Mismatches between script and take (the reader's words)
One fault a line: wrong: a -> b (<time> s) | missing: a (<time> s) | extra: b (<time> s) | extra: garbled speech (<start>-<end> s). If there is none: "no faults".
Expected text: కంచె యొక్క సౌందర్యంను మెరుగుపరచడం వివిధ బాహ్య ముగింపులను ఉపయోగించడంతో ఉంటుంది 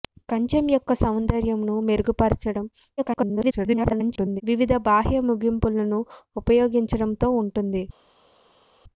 extra: garbled speech (3.0-4.4 s)